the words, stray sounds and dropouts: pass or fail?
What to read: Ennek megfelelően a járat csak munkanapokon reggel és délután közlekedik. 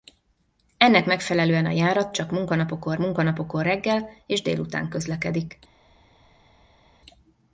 fail